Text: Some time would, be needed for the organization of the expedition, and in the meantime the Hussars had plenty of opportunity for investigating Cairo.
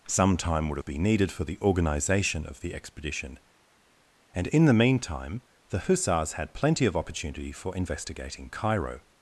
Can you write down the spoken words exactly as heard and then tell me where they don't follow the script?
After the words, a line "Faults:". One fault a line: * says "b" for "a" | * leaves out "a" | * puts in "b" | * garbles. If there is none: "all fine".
Some time would, be needed for the organization of the expedition, and in the meantime the Hussars had plenty of opportunity for investigating Cairo.
Faults:
all fine